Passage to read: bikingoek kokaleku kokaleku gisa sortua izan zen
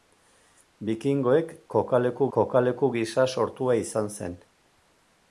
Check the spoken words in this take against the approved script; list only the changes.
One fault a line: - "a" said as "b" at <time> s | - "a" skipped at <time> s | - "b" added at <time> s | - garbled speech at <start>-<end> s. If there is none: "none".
none